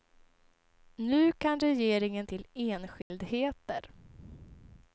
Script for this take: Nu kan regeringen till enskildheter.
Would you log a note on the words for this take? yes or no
no